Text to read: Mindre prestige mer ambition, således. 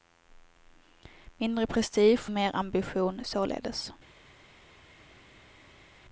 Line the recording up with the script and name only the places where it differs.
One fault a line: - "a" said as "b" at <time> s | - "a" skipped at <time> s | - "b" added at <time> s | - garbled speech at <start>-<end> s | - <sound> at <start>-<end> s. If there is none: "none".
none